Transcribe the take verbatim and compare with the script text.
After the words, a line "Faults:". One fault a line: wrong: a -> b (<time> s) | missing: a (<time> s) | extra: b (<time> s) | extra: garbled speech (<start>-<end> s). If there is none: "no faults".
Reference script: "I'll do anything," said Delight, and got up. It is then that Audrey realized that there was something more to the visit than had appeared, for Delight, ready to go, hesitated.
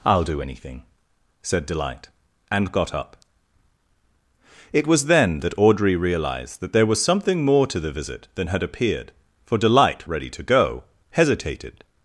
"I'll do anything," said Delight, and got up. It was then that Audrey realized that there was something more to the visit than had appeared, for Delight, ready to go, hesitated.
Faults:
wrong: is -> was (4.9 s)